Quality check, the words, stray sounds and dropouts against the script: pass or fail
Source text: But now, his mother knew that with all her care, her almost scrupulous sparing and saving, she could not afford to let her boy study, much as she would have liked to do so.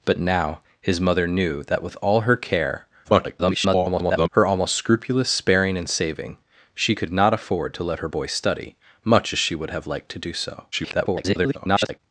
fail